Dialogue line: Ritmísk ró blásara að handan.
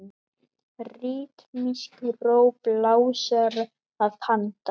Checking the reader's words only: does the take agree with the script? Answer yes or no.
yes